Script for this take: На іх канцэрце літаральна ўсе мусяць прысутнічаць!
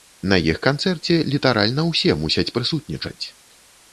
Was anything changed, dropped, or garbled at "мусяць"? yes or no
no